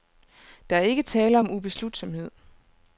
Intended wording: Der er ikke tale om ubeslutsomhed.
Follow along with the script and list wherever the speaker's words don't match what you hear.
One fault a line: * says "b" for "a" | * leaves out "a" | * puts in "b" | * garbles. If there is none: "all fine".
all fine